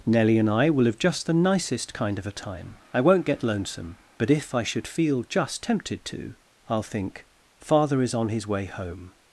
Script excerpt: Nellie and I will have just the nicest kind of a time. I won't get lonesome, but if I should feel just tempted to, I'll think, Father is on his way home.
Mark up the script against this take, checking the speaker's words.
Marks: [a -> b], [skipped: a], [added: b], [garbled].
Nellie and I will have just the nicest kind of a time. I won't get lonesome, but if I should feel just tempted to, I'll think, Father is on his way home.